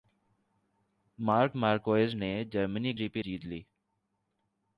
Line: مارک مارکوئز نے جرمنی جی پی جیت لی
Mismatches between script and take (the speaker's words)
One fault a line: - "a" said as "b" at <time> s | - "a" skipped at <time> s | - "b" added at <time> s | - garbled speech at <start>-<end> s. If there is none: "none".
none